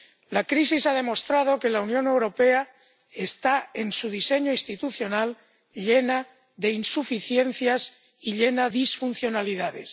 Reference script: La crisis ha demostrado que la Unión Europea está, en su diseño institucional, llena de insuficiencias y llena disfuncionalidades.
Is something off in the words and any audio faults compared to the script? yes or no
no